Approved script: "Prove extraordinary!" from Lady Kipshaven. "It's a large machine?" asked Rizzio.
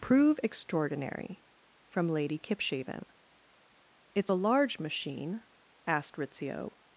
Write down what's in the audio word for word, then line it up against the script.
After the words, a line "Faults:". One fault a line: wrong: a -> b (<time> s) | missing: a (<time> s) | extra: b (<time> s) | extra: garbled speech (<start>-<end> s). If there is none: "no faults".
"Prove extraordinary!" from Lady Kipshaven. "It's a large machine?" asked Rizzio.
Faults:
no faults